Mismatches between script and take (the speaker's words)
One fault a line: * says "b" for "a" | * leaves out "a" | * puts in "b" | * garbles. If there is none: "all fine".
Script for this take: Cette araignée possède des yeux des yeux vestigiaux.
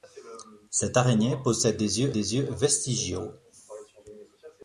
all fine